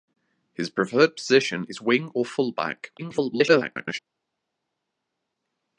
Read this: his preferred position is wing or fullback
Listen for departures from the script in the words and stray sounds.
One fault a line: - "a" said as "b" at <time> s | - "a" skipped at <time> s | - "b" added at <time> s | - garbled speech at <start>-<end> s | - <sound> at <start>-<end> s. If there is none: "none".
- garbled speech at 3.0-4.0 s